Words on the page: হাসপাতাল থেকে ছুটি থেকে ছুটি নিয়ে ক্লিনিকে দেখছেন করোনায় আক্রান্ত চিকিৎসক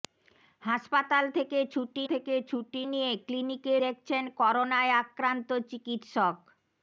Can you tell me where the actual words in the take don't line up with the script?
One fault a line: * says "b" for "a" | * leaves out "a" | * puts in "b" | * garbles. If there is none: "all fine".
all fine